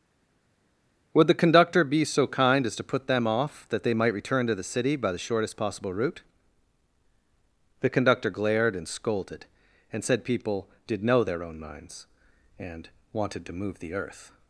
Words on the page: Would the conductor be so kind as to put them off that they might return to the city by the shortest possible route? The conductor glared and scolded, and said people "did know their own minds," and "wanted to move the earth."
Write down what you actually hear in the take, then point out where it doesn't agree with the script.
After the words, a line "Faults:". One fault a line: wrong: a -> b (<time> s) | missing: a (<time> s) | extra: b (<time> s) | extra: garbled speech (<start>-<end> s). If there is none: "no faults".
Would the conductor be so kind as to put them off that they might return to the city by the shortest possible route? The conductor glared and scolded, and said people "did know their own minds," and "wanted to move the earth."
Faults:
no faults